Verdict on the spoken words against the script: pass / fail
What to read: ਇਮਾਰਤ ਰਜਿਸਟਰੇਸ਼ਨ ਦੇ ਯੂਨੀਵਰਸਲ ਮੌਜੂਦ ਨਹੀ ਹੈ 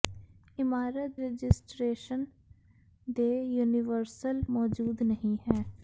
pass